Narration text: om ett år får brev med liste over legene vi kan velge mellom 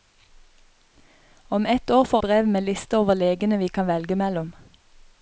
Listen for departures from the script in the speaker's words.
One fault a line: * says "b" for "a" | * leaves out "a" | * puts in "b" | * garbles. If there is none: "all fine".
all fine